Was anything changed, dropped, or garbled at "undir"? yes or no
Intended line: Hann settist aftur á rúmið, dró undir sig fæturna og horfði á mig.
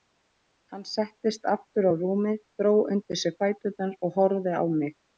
no